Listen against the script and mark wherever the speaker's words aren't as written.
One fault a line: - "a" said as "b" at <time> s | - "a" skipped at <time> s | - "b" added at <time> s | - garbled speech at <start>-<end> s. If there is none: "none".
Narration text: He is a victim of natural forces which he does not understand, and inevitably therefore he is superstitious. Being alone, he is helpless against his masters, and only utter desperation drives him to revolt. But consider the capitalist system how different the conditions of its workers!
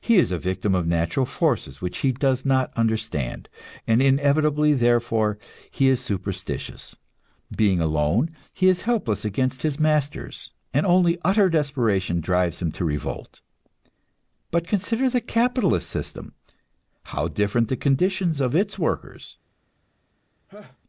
none